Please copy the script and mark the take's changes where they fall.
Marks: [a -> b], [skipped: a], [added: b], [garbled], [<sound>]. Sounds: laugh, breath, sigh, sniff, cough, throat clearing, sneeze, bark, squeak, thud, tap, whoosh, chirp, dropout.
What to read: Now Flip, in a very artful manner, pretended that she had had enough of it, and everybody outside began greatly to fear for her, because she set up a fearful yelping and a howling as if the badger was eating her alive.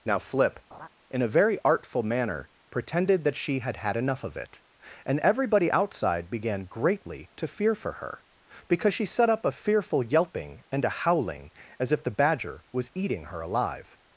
Now Flip, [laugh] in a very artful manner, pretended that she had had enough of it, and everybody outside began greatly to fear for her, because she set up a fearful yelping and a howling as if the badger was eating her alive.